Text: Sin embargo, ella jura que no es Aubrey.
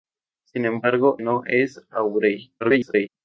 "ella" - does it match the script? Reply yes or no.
no